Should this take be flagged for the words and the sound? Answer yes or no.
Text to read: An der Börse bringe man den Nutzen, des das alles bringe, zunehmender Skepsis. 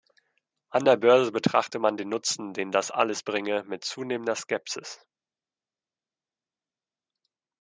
yes